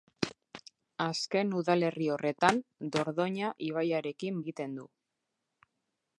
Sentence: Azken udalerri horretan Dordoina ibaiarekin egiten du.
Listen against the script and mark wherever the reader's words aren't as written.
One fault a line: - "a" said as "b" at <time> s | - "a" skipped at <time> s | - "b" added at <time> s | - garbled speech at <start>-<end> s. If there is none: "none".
none